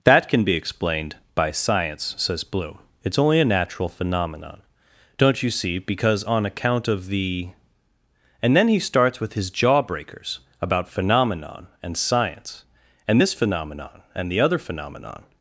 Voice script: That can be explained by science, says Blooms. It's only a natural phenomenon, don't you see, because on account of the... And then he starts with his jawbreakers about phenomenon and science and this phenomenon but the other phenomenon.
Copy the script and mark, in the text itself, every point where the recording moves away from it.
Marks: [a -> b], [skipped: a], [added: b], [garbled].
That can be explained by science, says [Blooms. -> Bloom] It's only a natural phenomenon, don't you see, because on account of the... And then he starts with his jawbreakers about phenomenon and science and this phenomenon [but -> and] the other phenomenon.